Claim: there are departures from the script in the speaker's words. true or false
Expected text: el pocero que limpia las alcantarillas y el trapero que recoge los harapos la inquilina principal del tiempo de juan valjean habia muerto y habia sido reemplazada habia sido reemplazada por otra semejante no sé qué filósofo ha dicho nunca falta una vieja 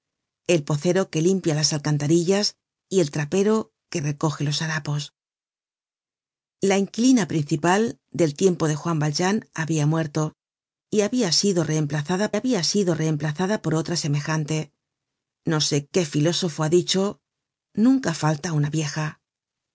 false